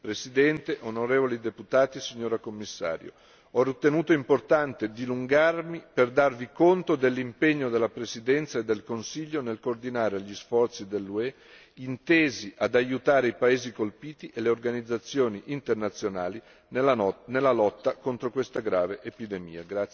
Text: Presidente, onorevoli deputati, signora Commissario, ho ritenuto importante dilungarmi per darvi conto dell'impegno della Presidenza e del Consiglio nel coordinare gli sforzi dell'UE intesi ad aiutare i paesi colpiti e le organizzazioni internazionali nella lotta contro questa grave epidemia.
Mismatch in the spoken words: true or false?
false